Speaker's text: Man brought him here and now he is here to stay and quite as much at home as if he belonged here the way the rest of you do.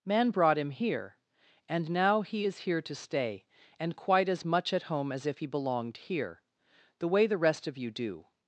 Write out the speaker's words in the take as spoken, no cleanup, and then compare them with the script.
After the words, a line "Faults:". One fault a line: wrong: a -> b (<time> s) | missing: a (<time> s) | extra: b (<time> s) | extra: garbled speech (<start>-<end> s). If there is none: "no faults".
Man brought him here and now he is here to stay and quite as much at home as if he belonged here the way the rest of you do.
Faults:
no faults